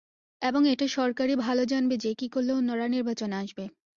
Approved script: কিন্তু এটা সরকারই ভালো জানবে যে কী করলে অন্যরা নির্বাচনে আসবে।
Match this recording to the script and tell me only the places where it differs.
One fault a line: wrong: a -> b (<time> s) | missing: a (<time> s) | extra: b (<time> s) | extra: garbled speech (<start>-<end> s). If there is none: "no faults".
wrong: কিন্তু -> এবং (0.4 s)